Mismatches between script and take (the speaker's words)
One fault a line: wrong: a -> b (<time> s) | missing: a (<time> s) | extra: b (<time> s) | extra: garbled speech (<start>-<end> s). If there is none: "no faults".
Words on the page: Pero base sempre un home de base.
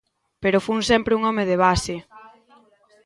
wrong: base -> fun (0.7 s)